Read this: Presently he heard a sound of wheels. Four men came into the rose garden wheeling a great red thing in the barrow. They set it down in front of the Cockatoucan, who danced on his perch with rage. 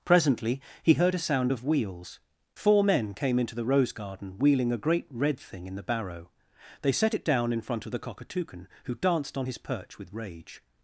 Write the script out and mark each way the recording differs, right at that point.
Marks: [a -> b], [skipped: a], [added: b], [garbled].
Presently he heard a sound of wheels. Four men came into the rose garden wheeling a great red thing in the barrow. They set it down in front of the Cockatoucan, who danced on his perch with rage.